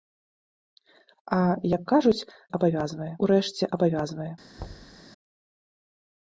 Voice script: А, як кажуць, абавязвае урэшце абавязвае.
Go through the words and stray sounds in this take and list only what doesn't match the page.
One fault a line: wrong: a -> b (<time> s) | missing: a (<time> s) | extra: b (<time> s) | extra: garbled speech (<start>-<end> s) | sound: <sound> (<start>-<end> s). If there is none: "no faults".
sound: thud (4.6-5.0 s)